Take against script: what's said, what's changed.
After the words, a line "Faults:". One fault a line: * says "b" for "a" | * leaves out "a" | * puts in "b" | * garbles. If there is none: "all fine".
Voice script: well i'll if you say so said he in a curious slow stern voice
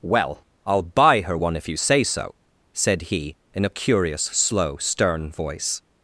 well i'll buy her one if you say so said he in a curious slow stern voice
Faults:
* puts in "buy her one"